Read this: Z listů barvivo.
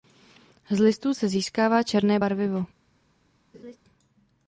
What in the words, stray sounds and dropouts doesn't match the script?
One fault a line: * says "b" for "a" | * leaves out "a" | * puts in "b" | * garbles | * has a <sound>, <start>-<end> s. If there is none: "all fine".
* puts in "se získává černé"
* has a laugh, 3.5-3.8 s